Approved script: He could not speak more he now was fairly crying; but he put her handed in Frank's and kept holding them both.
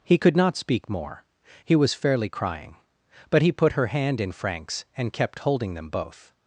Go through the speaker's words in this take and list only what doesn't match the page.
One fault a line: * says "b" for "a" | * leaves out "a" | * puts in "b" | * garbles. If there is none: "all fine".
* leaves out "now"
* says "hand" for "handed"